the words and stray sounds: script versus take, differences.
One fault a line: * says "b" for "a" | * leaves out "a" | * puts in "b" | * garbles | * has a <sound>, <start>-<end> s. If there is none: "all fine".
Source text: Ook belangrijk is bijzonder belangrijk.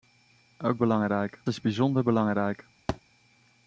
* has a thud, 2.9-3.0 s